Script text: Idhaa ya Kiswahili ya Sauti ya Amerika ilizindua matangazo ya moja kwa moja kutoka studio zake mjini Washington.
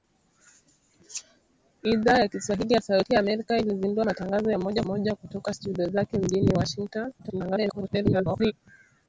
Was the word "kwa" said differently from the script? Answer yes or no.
yes